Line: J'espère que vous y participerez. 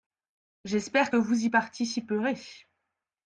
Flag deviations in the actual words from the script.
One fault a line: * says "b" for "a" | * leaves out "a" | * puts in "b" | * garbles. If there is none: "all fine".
all fine